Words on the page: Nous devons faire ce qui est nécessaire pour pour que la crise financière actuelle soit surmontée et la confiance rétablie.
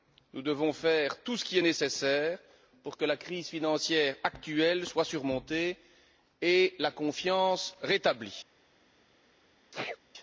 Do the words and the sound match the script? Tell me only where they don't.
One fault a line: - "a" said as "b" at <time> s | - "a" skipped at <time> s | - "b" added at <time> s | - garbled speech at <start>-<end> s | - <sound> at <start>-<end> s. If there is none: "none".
- "tout" added at 1.2 s
- "pour" skipped at 3.0 s
- sneeze at 9.7-10.0 s